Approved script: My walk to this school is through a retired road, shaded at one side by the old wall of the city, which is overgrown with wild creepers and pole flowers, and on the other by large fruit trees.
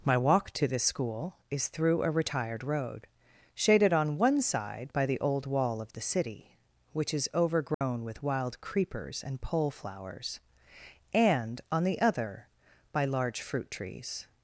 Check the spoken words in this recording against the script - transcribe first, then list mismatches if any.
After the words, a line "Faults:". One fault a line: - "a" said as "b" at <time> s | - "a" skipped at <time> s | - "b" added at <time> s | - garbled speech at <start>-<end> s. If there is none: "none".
My walk to this school is through a retired road, shaded on one side by the old wall of the city, which is overgrown with wild creepers and pole flowers, and on the other by large fruit trees.
Faults:
- "at" said as "on" at 3.9 s